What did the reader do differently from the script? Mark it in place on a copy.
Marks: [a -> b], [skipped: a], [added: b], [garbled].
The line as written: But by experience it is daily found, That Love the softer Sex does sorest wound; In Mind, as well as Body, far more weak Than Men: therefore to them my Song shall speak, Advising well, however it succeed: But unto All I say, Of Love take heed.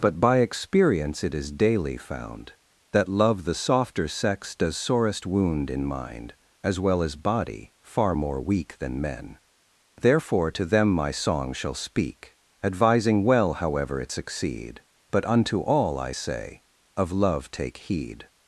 But by experience it is daily found, That Love the softer Sex does sorest wound; In Mind, as well as Body, far more weak Than Men: therefore to them my Song shall speak, Advising well, however it succeed: But unto All I say, Of Love take heed.